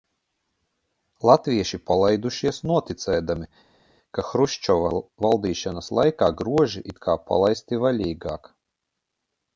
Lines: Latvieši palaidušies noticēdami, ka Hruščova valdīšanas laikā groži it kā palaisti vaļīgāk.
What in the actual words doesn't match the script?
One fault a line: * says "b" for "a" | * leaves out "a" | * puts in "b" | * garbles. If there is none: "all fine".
all fine